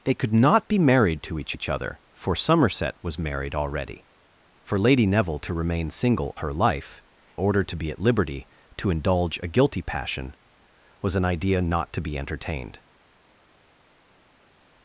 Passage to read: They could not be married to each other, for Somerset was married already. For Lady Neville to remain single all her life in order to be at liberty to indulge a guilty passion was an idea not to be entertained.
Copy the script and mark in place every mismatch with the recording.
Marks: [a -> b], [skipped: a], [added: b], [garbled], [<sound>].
They could not be married to each [added: each] other, for Somerset was married already. For Lady Neville to remain single [skipped: all] her life [skipped: in] order to be at liberty to indulge a guilty passion was an idea not to be entertained.